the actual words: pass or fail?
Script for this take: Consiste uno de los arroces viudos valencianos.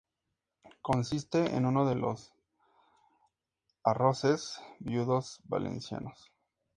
fail